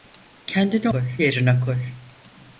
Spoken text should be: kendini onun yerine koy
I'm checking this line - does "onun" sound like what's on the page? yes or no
no